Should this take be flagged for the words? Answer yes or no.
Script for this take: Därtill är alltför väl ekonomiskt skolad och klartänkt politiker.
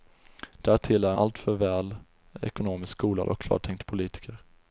no